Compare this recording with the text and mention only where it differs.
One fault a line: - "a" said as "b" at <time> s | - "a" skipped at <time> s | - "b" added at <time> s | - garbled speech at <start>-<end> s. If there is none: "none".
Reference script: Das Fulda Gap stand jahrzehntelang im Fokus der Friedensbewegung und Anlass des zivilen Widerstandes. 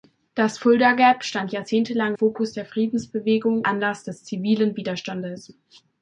- "im" skipped at 2.1 s
- "und" skipped at 3.6 s